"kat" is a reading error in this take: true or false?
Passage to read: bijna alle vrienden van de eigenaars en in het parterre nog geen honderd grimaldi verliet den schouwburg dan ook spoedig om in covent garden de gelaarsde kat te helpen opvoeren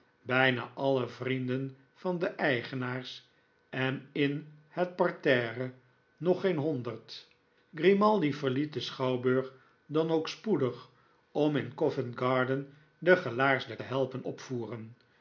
true